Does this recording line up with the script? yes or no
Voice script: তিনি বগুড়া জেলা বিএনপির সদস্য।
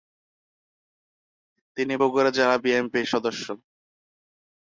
yes